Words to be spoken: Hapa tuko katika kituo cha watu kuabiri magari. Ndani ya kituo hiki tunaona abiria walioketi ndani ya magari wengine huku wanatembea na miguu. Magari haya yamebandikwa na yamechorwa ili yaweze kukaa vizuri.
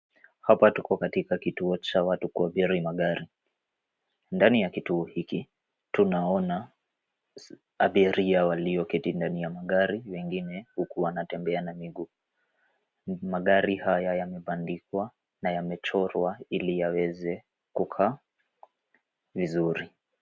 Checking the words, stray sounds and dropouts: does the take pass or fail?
pass